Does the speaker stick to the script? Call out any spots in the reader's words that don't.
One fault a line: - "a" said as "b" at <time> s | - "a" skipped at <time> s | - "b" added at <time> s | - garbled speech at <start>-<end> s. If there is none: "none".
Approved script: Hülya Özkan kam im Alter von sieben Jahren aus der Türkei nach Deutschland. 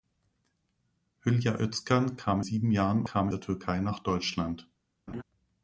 - "im Alter von" skipped at 2.4 s
- "aus" said as "kam" at 3.1 s